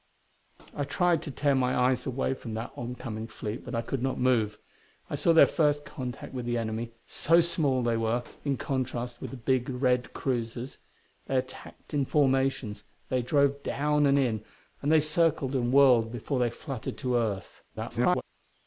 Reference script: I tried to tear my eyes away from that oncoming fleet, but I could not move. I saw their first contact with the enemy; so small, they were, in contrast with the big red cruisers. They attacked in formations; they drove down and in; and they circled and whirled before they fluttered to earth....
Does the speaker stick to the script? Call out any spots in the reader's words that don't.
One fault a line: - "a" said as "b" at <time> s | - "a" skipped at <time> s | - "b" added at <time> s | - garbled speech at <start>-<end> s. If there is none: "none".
- garbled speech at 17.7-18.2 s